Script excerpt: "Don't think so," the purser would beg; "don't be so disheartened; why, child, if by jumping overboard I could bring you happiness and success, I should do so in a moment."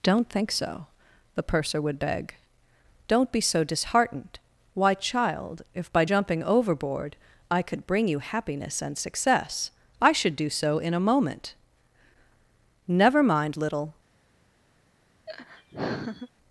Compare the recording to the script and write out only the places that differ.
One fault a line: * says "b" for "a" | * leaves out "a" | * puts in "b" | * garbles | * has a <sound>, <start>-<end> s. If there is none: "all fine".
* puts in "Never mind little"
* has a laugh, 15.3-16.3 s